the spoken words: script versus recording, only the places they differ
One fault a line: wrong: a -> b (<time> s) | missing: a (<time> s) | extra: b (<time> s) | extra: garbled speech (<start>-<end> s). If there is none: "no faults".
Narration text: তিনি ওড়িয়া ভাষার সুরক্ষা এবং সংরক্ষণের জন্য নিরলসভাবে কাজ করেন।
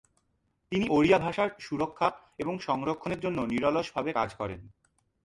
no faults